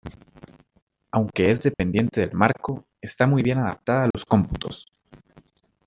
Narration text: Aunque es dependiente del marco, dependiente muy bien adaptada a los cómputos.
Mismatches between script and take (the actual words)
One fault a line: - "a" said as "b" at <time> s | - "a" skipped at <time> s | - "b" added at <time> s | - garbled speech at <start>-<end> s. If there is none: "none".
- "dependiente" said as "está" at 3.0 s